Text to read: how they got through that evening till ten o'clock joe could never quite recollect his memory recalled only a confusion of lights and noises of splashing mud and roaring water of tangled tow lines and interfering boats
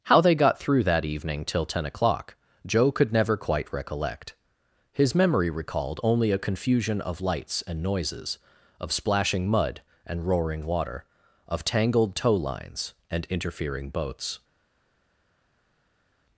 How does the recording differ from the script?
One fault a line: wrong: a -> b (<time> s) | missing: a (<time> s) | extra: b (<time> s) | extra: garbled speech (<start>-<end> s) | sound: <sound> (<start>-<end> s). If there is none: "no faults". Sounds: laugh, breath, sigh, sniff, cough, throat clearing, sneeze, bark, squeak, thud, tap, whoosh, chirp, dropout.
no faults